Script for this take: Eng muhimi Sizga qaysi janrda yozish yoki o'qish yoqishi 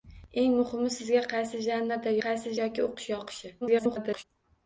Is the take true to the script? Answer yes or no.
no